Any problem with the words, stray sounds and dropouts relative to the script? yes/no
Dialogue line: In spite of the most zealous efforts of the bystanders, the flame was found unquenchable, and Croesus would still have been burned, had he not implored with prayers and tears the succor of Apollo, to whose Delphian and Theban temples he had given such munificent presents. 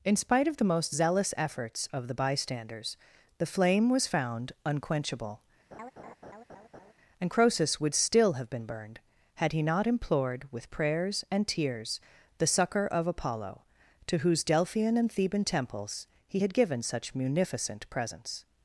yes